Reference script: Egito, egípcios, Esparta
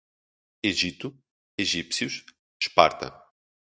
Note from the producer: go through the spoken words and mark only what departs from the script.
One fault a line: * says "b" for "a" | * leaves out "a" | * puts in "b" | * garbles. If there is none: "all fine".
all fine